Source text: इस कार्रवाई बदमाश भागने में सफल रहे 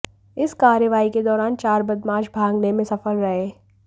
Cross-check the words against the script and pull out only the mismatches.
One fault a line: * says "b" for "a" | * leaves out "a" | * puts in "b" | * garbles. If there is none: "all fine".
* puts in "के दौरान चार"